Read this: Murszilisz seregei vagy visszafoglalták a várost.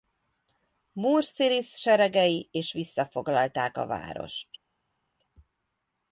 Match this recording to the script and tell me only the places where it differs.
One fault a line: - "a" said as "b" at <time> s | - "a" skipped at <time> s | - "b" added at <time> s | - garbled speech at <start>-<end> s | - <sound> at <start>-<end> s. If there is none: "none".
- "vagy" said as "és" at 2.5 s